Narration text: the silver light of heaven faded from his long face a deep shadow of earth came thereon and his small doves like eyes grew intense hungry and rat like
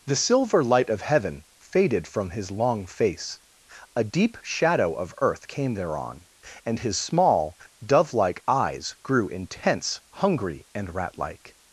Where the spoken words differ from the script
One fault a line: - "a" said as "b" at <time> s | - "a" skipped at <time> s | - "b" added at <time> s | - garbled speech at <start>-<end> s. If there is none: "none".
- "doves" said as "dove" at 7.8 s